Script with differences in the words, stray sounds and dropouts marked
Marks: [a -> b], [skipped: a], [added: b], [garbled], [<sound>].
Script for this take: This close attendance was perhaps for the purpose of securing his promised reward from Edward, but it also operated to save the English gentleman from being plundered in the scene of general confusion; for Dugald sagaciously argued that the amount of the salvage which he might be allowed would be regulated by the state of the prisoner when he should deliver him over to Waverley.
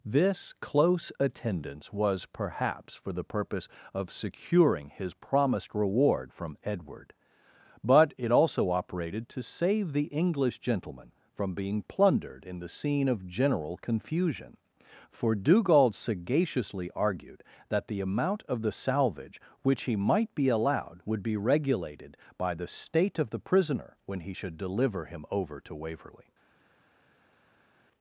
This close attendance was perhaps for the purpose of securing his promised reward from Edward, but it also operated to save the English gentleman from being plundered in the scene of general confusion; for Dugald sagaciously argued that the amount of the salvage which he might be allowed would be regulated by the state of the prisoner when he should deliver him over to Waverley.